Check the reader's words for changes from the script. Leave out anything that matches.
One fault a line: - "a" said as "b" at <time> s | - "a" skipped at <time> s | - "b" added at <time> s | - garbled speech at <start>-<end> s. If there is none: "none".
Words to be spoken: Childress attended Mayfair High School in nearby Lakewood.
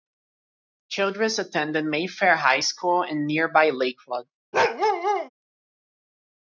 none